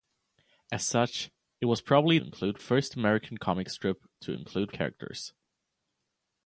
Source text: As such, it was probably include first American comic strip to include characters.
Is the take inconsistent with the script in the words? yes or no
no